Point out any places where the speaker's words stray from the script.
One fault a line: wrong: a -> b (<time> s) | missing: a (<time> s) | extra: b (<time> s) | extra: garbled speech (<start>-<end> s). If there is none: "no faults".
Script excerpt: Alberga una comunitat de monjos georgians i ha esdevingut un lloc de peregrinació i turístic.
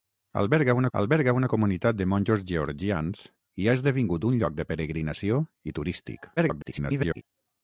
extra: alberga una (1.0 s)
extra: garbled speech (6.4-7.2 s)